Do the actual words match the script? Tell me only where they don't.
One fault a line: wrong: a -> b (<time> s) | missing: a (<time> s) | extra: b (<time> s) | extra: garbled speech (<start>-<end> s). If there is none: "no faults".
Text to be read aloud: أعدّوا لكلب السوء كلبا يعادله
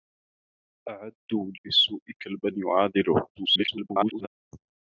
missing: لكلب (1.5 s)
extra: garbled speech (3.3-4.3 s)